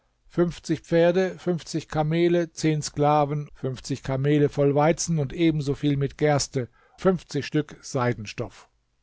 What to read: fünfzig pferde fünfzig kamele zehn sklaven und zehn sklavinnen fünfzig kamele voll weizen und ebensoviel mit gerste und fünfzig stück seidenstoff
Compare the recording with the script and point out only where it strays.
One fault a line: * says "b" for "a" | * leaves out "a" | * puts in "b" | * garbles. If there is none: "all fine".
* leaves out "und zehn sklavinnen"
* leaves out "und"